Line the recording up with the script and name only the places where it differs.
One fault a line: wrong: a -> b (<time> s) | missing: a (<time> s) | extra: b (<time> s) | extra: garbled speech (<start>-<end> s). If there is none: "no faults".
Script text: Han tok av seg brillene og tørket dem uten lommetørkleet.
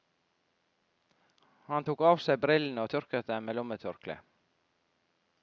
wrong: uten -> med (3.5 s)